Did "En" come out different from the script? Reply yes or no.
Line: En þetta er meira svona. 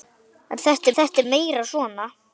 no